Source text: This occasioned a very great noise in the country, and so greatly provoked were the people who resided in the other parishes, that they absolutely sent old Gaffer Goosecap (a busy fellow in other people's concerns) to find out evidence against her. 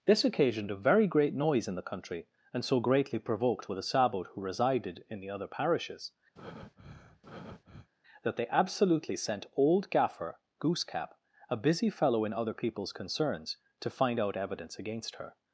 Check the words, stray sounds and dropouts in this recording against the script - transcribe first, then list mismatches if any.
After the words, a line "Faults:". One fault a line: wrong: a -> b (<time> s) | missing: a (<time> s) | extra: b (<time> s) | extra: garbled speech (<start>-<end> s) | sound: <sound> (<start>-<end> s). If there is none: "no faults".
This occasioned a very great noise in the country, and so greatly provoked were the sabot who resided in the other parishes, that they absolutely sent old Gaffer Goosecap (a busy fellow in other people's concerns) to find out evidence against her.
Faults:
wrong: people -> sabot (3.8 s)
sound: breath (6.4-7.9 s)